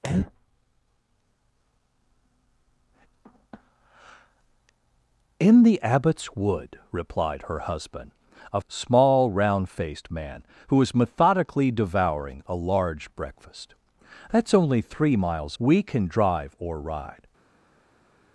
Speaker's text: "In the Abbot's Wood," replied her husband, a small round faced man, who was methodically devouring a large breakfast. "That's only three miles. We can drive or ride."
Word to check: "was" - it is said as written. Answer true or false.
true